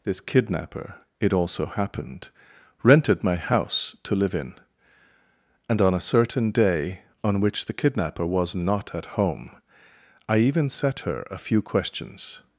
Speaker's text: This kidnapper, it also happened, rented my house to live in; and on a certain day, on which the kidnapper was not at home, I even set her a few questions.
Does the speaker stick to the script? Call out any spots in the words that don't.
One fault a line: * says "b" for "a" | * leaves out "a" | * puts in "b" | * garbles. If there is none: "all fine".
all fine